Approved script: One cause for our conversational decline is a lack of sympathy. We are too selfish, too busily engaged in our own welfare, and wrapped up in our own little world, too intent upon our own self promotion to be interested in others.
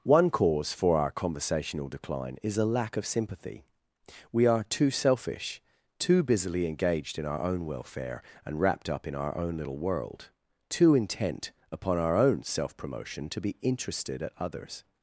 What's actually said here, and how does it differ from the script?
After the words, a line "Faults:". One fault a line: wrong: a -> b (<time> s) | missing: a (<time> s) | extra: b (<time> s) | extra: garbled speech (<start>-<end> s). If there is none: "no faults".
One cause for our conversational decline is a lack of sympathy. We are too selfish, too busily engaged in our own welfare, and wrapped up in our own little world, too intent upon our own self promotion to be interested at others.
Faults:
wrong: in -> at (14.2 s)